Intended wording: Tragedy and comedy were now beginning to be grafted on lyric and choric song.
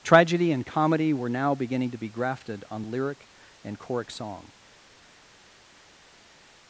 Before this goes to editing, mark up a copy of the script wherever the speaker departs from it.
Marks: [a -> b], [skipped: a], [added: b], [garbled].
Tragedy and comedy were now beginning to be grafted on lyric and choric song.